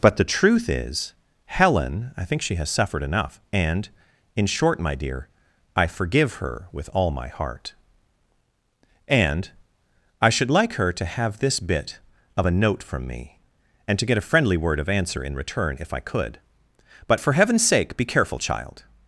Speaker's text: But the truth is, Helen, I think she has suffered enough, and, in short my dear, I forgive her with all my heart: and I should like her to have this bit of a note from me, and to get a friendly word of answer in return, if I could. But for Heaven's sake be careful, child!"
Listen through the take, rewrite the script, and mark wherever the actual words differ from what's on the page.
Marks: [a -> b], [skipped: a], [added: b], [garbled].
But the truth is, Helen, I think she has suffered enough, and, in short my dear, I forgive her with all my heart: and I should like her to have this bit of a note from me, and to get a friendly word of answer in return, if I could. But for Heaven's sake be careful, child!"